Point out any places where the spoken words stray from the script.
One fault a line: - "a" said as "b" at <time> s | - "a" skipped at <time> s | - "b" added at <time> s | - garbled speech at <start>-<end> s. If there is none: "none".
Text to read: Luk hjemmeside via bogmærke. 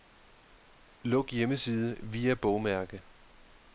none